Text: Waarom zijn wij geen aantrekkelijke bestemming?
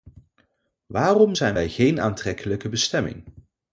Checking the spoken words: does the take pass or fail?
pass